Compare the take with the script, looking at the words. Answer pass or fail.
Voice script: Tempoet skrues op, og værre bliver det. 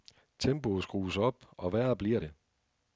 pass